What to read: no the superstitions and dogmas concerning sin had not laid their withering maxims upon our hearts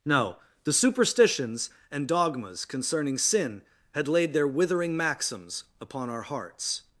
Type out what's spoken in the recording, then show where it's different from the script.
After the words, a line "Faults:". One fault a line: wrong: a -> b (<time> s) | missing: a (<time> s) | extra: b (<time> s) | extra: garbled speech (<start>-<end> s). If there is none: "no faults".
no the superstitions and dogmas concerning sin had laid their withering maxims upon our hearts
Faults:
missing: not (4.1 s)